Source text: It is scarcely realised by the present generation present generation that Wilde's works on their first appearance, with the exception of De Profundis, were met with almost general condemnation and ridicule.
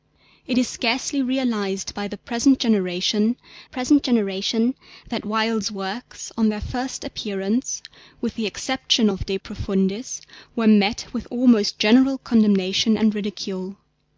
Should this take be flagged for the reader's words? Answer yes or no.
no